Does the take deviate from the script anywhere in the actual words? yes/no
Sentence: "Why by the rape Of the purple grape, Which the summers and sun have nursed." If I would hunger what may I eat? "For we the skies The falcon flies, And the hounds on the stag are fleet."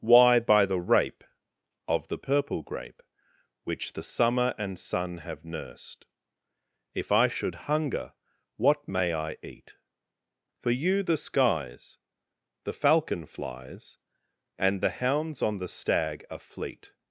yes